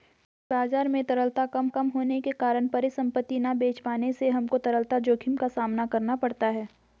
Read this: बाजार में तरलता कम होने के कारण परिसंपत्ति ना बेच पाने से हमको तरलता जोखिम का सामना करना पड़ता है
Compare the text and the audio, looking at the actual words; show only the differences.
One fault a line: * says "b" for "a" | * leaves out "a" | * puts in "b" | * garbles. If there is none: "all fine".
* puts in "कम"